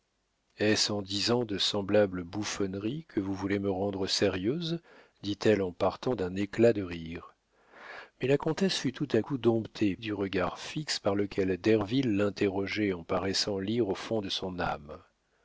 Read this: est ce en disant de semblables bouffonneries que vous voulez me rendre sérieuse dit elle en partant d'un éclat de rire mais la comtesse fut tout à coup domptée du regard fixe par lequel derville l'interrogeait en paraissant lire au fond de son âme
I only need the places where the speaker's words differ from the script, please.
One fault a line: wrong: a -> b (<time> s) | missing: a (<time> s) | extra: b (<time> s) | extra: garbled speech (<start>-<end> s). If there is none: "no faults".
no faults